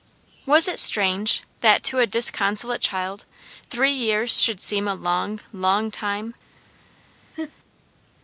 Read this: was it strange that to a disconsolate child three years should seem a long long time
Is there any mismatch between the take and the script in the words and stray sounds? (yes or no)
yes